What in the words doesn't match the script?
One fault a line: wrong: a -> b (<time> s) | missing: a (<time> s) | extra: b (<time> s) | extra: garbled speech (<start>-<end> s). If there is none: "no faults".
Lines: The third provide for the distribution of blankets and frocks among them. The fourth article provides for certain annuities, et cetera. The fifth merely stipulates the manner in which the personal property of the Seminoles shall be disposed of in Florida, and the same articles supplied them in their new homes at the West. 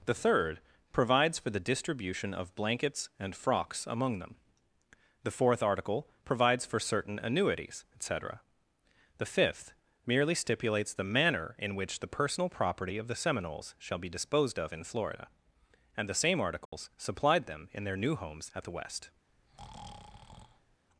wrong: provide -> provides (0.9 s)